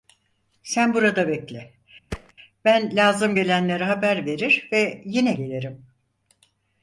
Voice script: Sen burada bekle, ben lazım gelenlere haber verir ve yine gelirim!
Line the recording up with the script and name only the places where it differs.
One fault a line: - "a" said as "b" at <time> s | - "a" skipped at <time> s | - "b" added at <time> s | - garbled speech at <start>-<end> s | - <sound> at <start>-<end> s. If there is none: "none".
- thud at 2.1-2.3 s